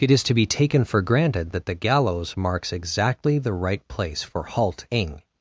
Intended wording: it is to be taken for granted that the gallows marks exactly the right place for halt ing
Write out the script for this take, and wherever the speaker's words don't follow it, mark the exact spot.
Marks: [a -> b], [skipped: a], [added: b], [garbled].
it is to be taken for granted that the gallows marks exactly the right place for halt ing